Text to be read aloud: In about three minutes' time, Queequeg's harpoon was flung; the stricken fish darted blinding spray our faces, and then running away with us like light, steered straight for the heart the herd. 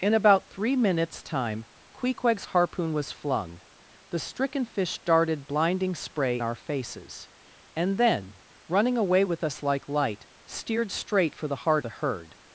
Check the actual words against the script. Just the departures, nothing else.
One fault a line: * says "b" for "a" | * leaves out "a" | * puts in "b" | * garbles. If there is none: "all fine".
all fine